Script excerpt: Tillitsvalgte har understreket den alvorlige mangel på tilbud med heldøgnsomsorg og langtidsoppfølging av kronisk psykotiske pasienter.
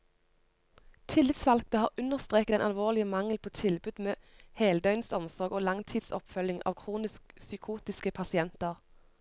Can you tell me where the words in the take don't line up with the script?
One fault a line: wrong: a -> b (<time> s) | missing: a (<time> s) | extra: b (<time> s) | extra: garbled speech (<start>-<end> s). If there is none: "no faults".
no faults